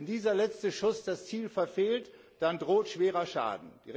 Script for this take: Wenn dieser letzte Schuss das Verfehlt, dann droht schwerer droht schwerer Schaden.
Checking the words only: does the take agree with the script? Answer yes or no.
no